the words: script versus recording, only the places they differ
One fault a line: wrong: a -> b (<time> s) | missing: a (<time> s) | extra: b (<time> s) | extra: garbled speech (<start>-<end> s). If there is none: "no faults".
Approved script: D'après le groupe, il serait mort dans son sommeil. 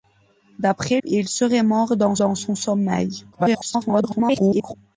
missing: le groupe (1.0 s)
extra: dans (2.2 s)
extra: garbled speech (3.3-4.7 s)